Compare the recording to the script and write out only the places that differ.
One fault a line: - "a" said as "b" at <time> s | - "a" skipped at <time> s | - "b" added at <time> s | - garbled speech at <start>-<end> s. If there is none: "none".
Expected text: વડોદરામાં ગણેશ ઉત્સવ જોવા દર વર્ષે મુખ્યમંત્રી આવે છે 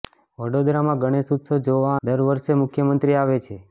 none